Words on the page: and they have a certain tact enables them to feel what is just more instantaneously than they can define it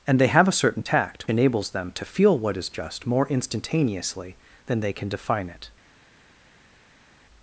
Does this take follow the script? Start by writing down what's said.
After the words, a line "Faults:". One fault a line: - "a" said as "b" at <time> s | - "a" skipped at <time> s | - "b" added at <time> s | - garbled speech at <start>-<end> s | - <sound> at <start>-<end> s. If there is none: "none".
and they have a certain tact enables them to feel what is just more instantaneously than they can define it
Faults:
none